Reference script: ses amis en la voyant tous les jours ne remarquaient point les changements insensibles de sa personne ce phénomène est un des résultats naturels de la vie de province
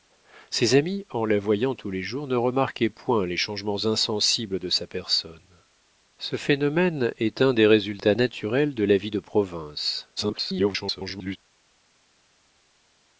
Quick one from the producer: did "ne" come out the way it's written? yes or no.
yes